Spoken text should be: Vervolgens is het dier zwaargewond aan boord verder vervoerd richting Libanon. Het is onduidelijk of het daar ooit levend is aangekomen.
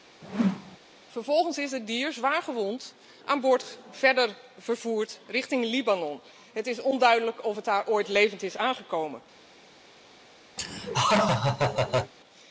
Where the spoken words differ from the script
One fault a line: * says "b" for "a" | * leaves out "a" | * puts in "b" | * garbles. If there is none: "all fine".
all fine